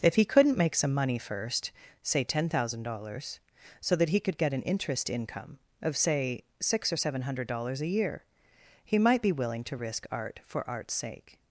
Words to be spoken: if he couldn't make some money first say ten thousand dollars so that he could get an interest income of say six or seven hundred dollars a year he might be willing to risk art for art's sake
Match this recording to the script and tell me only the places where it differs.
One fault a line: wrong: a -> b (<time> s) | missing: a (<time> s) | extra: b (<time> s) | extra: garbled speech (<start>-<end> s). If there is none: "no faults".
no faults